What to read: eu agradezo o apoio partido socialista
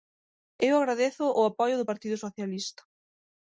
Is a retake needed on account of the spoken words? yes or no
yes